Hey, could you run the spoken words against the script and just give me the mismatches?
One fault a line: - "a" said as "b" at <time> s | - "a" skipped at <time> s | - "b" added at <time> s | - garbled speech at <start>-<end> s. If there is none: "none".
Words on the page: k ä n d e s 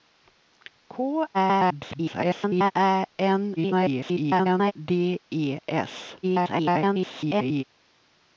- garbled speech at 1.3-2.7 s
- garbled speech at 3.6-4.7 s
- garbled speech at 6.2-7.6 s